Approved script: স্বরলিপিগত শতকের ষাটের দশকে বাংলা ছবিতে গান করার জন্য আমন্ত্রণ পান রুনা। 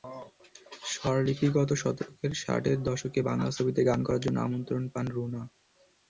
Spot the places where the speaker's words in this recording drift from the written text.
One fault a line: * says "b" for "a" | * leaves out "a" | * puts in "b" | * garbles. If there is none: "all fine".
all fine